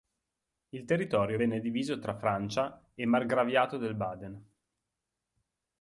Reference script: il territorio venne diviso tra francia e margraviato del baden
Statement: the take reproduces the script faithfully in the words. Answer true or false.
true